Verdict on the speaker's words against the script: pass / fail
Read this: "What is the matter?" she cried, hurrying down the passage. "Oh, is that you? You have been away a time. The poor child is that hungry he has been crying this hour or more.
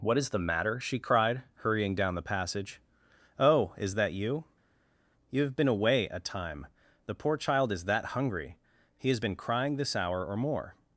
pass